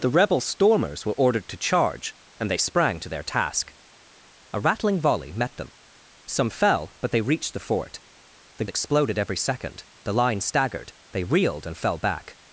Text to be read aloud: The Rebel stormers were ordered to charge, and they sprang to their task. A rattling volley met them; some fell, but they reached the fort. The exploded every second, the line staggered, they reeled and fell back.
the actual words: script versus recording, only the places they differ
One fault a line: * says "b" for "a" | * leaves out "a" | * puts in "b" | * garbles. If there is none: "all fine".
all fine